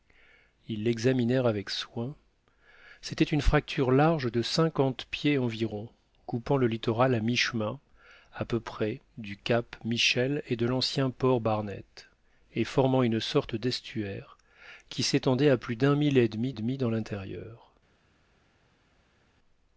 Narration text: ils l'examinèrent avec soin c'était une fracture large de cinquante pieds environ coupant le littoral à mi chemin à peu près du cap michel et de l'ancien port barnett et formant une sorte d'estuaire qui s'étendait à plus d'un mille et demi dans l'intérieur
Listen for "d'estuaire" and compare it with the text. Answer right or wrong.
right